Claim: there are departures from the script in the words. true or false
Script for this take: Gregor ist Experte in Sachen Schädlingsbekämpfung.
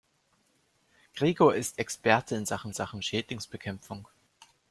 true